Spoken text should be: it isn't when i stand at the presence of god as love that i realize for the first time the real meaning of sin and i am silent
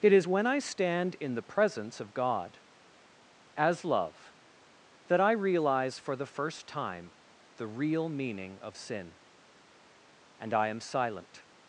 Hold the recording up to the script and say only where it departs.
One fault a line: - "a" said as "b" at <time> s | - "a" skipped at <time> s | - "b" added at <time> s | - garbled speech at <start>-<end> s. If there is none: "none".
- "isn't" said as "is" at 0.1 s
- "at" said as "in" at 1.2 s